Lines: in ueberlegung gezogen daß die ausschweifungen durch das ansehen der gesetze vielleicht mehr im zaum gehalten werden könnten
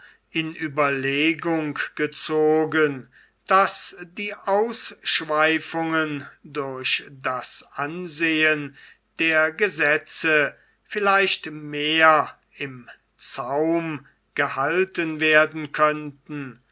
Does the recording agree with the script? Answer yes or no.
yes